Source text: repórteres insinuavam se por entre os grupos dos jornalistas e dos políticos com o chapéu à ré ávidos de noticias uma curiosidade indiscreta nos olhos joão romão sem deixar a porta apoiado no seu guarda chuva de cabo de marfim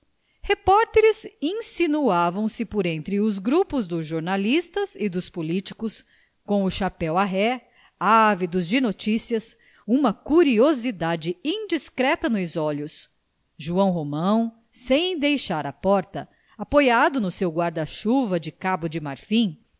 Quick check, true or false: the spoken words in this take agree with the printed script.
true